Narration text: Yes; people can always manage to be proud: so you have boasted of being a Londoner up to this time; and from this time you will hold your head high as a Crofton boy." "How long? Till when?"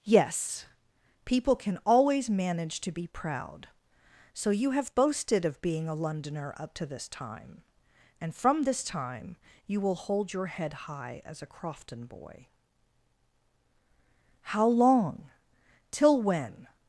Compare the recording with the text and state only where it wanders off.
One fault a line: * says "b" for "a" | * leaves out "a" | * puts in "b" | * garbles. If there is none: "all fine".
all fine